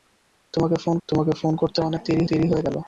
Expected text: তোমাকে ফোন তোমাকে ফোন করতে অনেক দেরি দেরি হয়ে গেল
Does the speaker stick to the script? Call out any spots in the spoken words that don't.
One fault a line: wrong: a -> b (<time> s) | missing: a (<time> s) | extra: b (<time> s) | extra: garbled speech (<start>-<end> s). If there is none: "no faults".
no faults